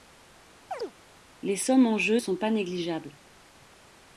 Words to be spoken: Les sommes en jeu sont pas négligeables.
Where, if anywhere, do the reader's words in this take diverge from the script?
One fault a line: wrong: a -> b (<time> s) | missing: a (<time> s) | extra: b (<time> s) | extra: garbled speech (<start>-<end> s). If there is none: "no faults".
no faults